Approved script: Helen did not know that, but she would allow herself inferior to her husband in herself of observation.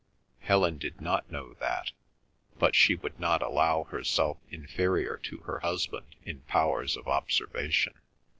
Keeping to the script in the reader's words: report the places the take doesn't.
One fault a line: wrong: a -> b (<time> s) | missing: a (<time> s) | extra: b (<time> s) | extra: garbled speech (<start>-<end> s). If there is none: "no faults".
extra: not (3.2 s)
wrong: herself -> powers (6.4 s)